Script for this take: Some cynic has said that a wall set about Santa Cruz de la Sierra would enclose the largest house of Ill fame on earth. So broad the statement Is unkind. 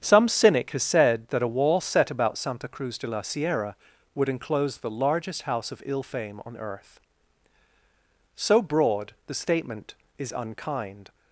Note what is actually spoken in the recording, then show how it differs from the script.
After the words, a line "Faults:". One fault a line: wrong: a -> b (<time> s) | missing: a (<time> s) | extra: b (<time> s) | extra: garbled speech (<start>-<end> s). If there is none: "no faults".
Some cynic has said that a wall set about Santa Cruz de la Sierra would enclose the largest house of Ill fame on earth. So broad the statement Is unkind.
Faults:
no faults